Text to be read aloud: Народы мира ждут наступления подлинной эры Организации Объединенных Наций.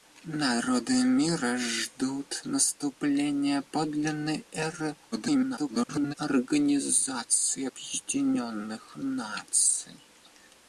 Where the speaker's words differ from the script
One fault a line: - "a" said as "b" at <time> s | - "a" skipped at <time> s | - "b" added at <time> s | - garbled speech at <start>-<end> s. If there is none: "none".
- garbled speech at 5.1-6.1 s